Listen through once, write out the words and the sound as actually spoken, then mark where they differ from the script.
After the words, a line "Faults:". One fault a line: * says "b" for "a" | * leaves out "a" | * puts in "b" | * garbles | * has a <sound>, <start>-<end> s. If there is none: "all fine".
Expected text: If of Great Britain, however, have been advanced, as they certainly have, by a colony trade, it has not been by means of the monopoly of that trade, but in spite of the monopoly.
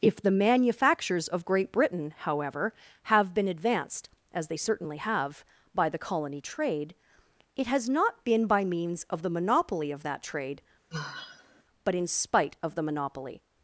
If the manufactures of Great Britain, however, have been advanced, as they certainly have, by the colony trade, it has not been by means of the monopoly of that trade, but in spite of the monopoly.
Faults:
* puts in "the manufactures"
* says "the" for "a"
* has a sigh, 10.9-11.6 s